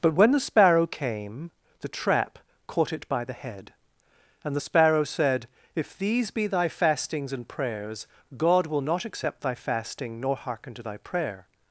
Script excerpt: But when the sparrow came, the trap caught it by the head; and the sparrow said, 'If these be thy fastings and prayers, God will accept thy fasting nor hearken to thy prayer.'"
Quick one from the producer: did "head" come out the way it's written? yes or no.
yes